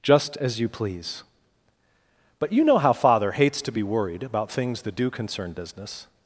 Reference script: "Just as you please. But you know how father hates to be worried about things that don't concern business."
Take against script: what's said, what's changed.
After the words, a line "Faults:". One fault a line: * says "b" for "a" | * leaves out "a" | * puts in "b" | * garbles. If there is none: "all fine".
"Just as you please. But you know how father hates to be worried about things that do concern business."
Faults:
* says "do" for "don't"